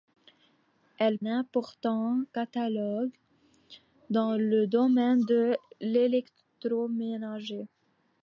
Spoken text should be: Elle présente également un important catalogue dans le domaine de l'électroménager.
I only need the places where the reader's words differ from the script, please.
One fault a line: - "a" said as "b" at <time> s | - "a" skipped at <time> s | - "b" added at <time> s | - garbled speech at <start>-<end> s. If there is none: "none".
- "présente également un" skipped at 1.2 s